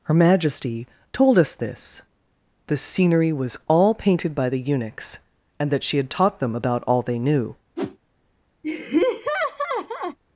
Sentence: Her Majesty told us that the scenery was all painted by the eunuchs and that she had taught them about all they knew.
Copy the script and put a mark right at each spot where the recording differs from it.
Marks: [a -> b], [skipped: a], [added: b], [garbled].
Her Majesty told us [that -> this] the scenery was all painted by the eunuchs and that she had taught them about all they knew.